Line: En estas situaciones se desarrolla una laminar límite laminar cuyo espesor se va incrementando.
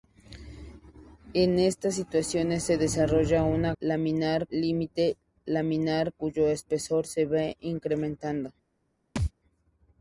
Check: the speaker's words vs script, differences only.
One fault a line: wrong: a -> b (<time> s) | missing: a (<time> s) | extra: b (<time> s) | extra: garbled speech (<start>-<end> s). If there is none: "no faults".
no faults